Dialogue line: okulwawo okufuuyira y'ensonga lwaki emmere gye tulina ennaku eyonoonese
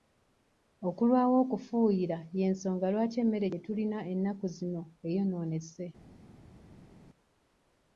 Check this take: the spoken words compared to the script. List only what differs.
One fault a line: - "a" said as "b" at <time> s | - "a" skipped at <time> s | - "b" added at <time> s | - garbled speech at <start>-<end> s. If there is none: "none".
- "zino" added at 4.6 s